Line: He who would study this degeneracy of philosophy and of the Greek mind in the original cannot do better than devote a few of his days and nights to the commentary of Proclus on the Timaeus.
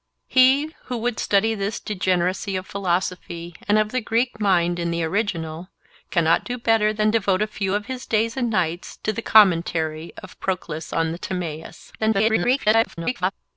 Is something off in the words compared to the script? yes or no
yes